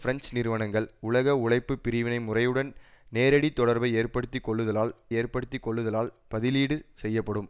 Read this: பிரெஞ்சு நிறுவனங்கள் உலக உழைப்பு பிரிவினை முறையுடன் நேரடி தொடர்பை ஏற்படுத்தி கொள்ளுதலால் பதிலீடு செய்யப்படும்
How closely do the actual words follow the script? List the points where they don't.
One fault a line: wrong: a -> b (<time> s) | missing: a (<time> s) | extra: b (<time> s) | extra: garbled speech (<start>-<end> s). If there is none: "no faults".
extra: ஏற்படுத்தி கொள்ளுதலால் (5.1 s)